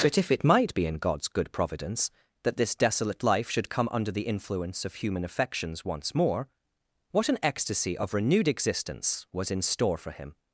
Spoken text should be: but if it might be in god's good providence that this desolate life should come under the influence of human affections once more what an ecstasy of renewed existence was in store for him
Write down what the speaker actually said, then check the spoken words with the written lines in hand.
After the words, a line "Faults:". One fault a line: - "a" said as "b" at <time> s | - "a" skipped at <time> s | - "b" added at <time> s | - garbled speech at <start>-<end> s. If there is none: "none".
but if it might be in god's good providence that this desolate life should come under the influence of human affections once more what an ecstasy of renewed existence was in store for him
Faults:
none